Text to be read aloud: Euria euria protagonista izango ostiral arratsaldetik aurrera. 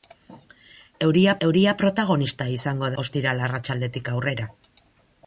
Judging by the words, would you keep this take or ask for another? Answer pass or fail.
pass